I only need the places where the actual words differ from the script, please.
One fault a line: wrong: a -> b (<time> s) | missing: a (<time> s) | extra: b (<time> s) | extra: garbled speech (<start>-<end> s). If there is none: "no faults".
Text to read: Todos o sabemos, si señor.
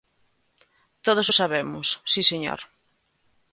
no faults